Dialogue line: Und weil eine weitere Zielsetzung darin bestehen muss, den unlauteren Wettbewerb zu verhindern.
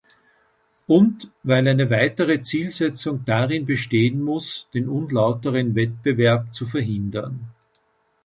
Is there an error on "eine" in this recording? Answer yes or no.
no